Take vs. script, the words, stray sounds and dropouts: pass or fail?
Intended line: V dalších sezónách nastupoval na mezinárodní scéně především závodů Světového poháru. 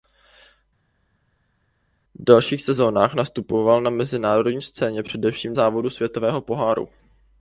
pass